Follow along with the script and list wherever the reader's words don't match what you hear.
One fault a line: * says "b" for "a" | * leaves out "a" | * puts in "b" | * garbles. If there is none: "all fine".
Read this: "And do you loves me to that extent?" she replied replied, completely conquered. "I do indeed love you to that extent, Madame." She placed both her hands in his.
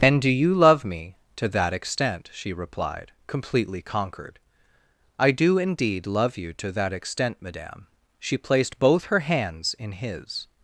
* says "love" for "loves"
* leaves out "replied"